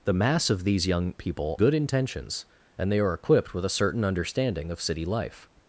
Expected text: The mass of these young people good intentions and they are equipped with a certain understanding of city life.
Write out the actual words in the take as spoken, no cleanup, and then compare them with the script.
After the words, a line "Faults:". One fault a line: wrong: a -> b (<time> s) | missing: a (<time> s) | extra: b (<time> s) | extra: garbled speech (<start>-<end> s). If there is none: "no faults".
The mass of these young people good intentions and they are equipped with a certain understanding of city life.
Faults:
no faults